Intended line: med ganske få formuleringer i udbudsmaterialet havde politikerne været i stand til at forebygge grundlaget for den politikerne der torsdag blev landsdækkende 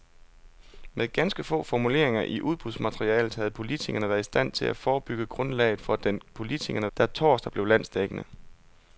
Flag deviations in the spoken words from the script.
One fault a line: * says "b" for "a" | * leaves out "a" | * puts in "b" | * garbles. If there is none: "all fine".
all fine